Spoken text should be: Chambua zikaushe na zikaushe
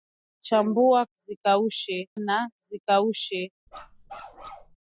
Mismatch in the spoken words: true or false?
false